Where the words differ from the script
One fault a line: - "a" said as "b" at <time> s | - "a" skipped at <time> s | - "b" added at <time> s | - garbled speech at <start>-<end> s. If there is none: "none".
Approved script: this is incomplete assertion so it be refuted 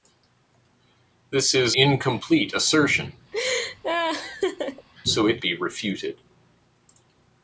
none